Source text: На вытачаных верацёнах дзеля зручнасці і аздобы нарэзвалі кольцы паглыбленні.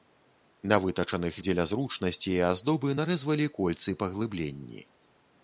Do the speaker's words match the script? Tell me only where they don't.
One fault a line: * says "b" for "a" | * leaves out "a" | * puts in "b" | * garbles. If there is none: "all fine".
* leaves out "верацёнах"